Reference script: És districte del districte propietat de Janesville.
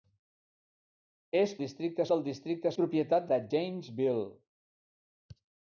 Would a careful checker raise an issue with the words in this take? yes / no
no